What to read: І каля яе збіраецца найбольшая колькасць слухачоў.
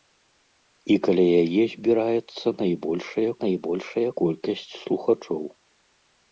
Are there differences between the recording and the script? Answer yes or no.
yes